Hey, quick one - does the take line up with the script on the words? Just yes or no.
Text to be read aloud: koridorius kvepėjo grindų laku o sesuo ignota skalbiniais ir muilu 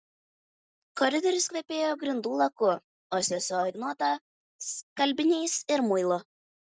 yes